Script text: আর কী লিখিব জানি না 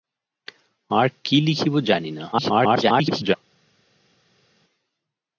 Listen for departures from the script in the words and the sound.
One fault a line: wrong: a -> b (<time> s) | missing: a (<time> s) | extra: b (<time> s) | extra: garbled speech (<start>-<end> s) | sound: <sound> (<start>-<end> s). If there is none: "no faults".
extra: garbled speech (2.3-3.4 s)